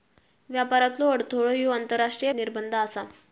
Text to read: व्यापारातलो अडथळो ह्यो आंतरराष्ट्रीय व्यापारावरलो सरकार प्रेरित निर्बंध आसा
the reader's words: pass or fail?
fail